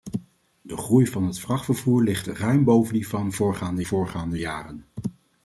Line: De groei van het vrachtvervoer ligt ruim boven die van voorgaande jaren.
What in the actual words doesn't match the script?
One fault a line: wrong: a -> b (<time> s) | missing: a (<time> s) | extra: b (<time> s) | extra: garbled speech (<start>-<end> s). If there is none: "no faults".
extra: voorgaande (3.8 s)